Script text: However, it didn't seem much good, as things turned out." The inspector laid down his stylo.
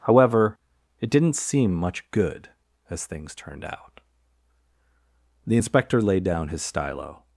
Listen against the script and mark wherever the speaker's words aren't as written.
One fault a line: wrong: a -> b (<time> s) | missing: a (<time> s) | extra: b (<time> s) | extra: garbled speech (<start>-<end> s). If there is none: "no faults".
no faults